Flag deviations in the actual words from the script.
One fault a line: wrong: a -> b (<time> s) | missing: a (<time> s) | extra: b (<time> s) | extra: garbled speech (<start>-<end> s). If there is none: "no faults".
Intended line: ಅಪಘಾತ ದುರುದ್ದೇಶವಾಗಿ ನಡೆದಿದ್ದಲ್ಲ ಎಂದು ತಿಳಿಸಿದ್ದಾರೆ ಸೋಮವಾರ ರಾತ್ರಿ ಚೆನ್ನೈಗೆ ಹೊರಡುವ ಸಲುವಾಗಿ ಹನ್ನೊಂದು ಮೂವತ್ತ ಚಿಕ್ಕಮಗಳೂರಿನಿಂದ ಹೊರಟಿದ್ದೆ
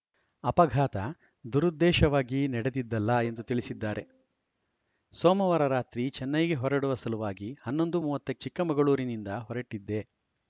no faults